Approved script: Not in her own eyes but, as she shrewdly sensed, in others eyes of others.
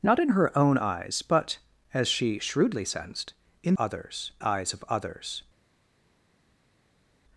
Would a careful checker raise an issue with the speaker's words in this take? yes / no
no